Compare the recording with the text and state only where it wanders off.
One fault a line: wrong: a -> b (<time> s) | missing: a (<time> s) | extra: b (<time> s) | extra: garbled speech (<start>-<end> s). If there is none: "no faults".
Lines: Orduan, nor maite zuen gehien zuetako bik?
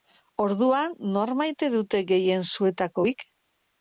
wrong: zuen -> dute (1.7 s)